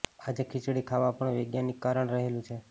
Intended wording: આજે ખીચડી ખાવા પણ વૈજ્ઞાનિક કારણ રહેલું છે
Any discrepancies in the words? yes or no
no